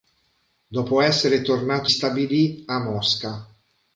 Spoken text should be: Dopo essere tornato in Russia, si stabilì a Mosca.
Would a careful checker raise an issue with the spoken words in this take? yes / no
yes